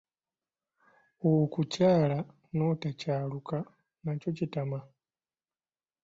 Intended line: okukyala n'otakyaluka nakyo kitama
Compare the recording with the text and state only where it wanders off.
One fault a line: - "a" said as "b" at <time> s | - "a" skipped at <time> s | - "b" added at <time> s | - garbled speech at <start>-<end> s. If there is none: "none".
none